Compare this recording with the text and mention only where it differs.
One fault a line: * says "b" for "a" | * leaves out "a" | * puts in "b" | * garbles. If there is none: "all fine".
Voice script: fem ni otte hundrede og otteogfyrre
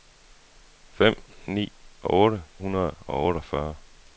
all fine